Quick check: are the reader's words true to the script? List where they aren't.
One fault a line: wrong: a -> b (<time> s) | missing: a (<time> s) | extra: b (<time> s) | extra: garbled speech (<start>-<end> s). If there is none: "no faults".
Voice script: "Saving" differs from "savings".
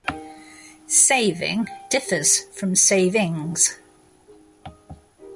no faults